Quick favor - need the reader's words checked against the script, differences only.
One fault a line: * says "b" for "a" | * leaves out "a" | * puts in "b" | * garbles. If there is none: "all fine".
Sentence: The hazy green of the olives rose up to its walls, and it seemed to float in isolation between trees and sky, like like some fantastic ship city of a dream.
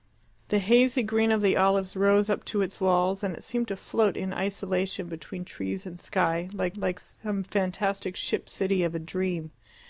all fine